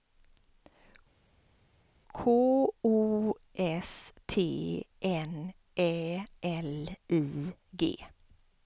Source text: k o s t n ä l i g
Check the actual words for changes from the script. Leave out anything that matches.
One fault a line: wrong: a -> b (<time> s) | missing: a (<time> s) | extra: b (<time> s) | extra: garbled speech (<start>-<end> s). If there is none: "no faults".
no faults